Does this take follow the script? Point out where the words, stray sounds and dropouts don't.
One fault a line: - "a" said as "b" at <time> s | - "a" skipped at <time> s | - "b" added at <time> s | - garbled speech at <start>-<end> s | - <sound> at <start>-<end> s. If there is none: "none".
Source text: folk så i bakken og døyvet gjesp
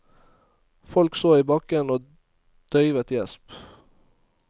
none